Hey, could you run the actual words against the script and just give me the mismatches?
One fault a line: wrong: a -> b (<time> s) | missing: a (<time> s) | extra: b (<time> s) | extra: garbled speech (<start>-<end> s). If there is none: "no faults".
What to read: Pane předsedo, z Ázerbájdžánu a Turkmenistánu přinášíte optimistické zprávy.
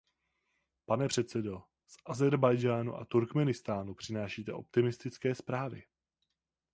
no faults